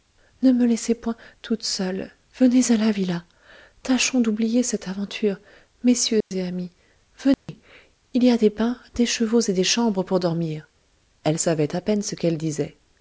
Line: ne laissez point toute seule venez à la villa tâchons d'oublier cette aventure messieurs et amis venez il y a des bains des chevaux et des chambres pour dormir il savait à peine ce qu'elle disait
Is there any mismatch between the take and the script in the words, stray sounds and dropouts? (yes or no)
yes